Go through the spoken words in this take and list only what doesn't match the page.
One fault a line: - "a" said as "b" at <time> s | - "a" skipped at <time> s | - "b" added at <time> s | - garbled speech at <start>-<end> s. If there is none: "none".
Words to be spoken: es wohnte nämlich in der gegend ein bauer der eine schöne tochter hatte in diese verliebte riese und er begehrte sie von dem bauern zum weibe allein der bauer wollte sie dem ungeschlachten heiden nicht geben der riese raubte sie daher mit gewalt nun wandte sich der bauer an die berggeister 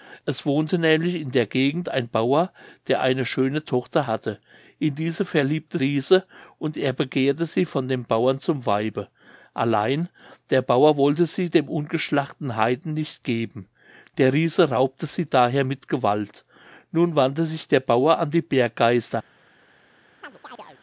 none